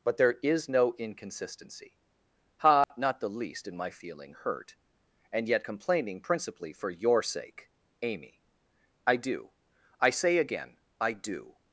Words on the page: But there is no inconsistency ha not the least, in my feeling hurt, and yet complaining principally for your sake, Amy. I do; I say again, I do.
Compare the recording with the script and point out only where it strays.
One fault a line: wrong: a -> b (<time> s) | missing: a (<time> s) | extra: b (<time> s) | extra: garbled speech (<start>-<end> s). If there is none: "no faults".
no faults